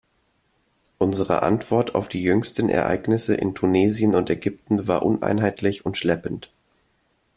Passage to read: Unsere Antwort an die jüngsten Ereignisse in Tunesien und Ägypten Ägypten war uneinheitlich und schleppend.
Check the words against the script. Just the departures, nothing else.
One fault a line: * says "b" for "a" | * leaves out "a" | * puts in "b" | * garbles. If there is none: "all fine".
* says "auf" for "an"
* leaves out "Ägypten"